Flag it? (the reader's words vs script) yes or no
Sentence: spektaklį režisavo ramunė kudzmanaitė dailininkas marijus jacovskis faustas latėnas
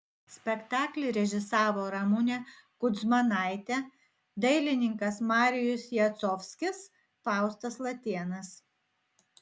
no